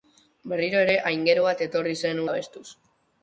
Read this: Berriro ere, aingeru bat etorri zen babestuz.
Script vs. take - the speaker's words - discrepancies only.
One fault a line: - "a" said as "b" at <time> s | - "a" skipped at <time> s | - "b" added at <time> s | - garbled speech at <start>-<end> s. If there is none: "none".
none